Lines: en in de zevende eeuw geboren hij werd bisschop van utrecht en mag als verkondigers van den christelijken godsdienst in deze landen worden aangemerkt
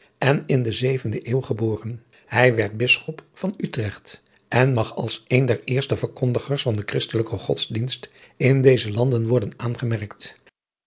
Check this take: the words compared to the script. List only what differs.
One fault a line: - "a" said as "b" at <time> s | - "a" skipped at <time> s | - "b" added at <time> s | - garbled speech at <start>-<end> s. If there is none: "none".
- "een der eerste" added at 5.3 s